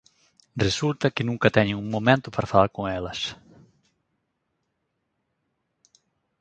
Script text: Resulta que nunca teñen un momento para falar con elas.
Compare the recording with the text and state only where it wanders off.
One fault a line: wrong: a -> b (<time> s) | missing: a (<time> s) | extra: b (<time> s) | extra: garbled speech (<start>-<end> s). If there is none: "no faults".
no faults